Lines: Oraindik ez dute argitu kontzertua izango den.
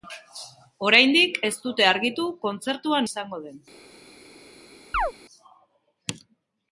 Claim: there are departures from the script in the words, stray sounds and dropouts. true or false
true